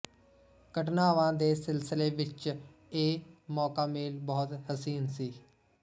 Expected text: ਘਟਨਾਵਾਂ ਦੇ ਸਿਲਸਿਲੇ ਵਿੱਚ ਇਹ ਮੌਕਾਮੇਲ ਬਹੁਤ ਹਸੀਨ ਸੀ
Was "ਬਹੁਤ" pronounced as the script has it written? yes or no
yes